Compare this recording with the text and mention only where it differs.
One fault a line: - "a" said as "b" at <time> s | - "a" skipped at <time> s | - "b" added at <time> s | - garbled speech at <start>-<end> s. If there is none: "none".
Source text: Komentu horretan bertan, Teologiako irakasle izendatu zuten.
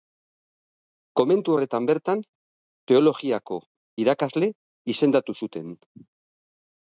none